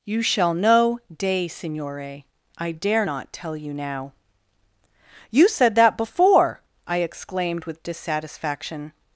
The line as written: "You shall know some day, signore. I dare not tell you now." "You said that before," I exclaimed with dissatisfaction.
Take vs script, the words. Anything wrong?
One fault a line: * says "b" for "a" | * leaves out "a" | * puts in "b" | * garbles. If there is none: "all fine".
* leaves out "some"